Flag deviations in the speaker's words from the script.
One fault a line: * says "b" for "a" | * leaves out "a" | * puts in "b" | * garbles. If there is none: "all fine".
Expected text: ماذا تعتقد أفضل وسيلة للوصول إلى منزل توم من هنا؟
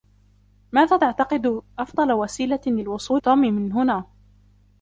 * leaves out "إلى منزل"